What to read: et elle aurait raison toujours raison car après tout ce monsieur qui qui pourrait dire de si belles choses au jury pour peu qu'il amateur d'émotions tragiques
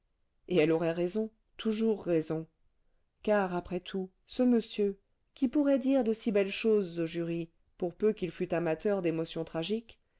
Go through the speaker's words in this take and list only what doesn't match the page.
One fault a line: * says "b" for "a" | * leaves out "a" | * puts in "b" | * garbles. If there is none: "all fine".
* leaves out "qui"
* puts in "fût"